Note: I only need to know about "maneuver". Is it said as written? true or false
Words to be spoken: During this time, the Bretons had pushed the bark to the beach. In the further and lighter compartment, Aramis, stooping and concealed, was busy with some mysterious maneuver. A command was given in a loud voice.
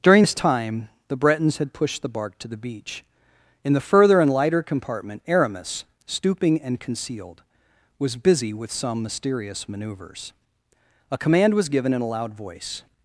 false